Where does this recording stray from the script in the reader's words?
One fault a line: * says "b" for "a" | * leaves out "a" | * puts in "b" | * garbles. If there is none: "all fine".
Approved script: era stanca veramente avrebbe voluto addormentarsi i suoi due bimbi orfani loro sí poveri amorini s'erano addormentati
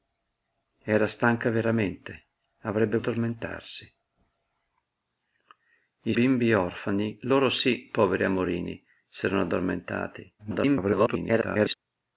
* leaves out "voluto"
* leaves out "suoi due"
* garbles